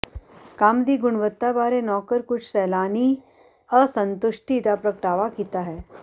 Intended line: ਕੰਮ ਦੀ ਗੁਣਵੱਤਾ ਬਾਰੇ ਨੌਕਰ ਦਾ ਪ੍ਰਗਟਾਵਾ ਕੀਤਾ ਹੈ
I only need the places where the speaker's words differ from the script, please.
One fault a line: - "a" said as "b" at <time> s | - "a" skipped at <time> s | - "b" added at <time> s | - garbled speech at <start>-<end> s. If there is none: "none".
- "ਕੁਝ ਸੈਲਾਨੀ ਅਸੰਤੁਸ਼ਟੀ" added at 2.2 s